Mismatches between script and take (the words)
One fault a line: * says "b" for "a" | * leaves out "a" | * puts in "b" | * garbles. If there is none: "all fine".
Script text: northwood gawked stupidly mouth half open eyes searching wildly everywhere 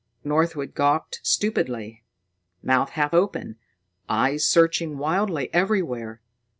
all fine